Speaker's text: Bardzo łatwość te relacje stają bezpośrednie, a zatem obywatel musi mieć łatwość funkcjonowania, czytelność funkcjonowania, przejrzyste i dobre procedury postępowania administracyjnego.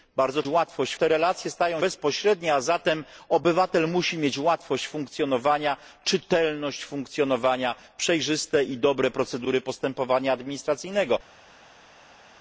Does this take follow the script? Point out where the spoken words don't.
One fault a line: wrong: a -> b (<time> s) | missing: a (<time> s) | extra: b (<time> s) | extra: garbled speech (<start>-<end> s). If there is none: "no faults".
no faults